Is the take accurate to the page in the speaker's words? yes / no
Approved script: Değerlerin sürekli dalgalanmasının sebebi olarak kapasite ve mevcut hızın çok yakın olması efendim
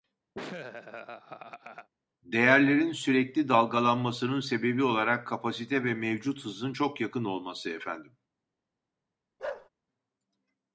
yes